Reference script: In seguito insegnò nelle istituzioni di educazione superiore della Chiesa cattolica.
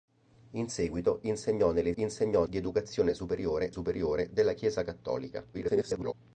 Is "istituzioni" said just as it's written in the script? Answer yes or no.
no